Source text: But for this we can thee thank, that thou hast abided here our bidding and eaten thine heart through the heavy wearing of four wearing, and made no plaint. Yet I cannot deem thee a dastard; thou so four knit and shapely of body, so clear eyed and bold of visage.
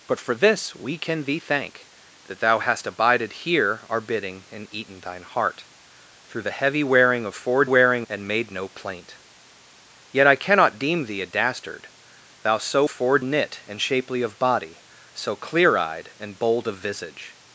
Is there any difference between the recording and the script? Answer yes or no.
no